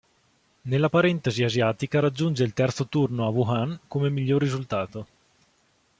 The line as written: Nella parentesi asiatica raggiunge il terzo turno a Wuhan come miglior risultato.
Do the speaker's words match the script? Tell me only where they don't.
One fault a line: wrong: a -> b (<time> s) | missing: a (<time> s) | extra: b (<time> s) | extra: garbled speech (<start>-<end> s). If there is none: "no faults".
no faults